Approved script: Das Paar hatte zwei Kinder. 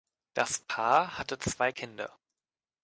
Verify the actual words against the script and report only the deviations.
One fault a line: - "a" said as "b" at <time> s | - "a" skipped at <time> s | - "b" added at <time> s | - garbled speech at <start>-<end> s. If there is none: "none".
none